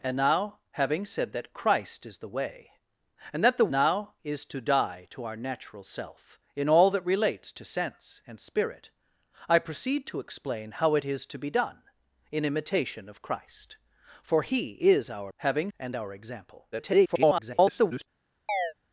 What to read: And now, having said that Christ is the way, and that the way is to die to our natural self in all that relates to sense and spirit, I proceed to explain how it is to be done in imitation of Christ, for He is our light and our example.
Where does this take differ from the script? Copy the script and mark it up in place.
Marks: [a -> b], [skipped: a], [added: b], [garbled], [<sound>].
And now, having said that Christ is the way, and that the [way -> now] is to die to our natural self in all that relates to sense and spirit, I proceed to explain how it is to be done in imitation of Christ, for He is our [light -> having] and our example. [garbled] [chirp]